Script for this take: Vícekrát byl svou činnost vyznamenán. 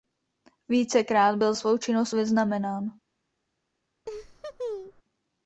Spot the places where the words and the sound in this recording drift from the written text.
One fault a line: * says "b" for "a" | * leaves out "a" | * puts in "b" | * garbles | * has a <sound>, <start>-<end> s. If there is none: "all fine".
* has a laugh, 4.1-5.0 s